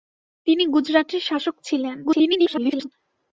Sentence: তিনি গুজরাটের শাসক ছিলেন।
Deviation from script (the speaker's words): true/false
true